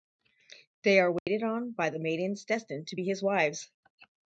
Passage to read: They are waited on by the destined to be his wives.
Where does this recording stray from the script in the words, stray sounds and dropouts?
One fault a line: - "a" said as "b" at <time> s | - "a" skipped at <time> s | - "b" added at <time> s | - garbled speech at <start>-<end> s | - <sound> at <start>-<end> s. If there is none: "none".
- dropout at 1.2-1.3 s
- "maidens" added at 2.0 s